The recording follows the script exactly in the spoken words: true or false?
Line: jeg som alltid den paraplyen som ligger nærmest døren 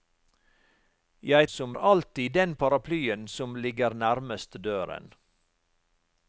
true